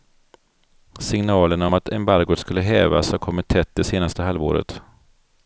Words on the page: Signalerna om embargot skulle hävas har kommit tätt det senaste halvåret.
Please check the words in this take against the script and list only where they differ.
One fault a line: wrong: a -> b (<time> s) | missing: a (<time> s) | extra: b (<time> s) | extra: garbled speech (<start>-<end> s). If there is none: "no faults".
extra: att (1.7 s)